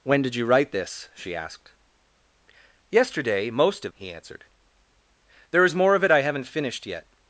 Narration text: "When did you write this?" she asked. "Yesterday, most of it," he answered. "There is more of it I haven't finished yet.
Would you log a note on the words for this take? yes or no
yes